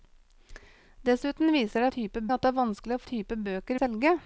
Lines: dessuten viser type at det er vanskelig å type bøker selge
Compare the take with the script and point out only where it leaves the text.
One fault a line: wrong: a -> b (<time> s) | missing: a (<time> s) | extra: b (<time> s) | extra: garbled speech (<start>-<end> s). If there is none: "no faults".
no faults